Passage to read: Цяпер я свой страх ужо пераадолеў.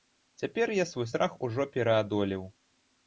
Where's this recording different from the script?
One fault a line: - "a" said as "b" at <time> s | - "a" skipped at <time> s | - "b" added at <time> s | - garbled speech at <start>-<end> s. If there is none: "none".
none